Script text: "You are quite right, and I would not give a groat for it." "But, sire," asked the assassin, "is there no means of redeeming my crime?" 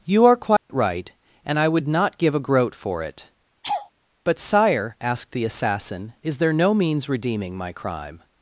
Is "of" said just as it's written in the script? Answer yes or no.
no